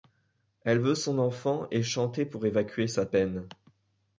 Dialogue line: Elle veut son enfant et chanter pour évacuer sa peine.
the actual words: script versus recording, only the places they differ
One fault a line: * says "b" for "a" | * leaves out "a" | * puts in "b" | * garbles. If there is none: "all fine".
all fine